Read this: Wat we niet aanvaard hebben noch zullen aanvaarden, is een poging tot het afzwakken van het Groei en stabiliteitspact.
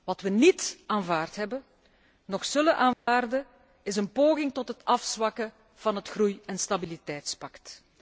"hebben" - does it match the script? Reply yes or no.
yes